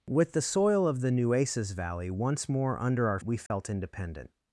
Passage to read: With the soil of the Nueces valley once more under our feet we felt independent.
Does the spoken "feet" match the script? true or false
false